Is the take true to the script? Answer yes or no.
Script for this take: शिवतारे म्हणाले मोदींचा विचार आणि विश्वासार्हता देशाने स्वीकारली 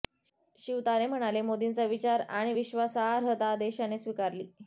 yes